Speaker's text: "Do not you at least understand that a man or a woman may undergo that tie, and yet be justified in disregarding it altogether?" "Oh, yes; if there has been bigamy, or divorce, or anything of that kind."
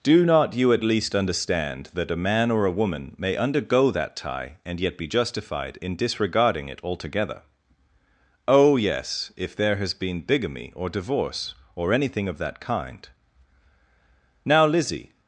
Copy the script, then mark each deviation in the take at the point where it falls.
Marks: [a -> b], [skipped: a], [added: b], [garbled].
"Do not you at least understand that a man or a woman may undergo that tie, and yet be justified in disregarding it altogether?" "Oh, yes; if there has been bigamy, or divorce, or anything of that kind." [added: Now Lizzie]